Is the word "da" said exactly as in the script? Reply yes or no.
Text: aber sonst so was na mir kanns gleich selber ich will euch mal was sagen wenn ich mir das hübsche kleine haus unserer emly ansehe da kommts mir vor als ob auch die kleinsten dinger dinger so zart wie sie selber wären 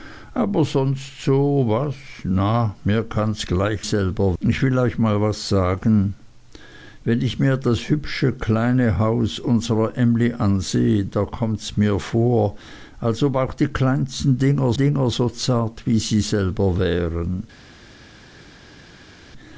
yes